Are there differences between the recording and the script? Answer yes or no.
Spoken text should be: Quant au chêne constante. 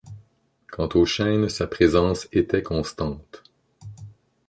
yes